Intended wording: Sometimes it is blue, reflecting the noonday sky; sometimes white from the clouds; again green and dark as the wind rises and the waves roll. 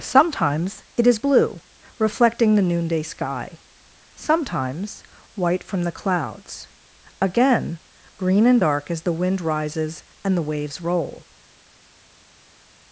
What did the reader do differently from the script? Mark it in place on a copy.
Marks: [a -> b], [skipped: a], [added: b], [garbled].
Sometimes it is blue, reflecting the noonday sky; sometimes white from the clouds; again green and dark as the wind rises and the waves roll.